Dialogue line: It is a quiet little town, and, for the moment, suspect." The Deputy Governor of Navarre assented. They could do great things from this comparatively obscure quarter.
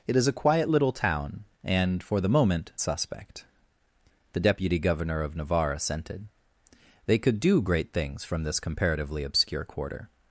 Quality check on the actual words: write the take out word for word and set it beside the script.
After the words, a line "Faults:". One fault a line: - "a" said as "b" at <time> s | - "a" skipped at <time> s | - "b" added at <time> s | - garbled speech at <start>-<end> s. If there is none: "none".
It is a quiet little town, and, for the moment, suspect." The Deputy Governor of Navarre assented. They could do great things from this comparatively obscure quarter.
Faults:
none